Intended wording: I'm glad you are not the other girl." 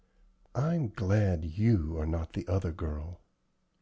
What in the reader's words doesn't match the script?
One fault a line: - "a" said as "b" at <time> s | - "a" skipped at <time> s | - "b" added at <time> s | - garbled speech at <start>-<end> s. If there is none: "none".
none